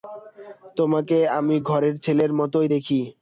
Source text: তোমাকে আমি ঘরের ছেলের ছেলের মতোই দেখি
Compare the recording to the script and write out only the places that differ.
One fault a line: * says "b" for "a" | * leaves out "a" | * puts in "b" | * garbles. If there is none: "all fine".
* leaves out "ছেলের"